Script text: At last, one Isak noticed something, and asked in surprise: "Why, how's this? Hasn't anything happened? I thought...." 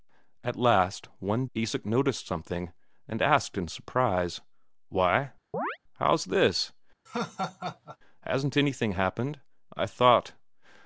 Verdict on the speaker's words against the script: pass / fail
pass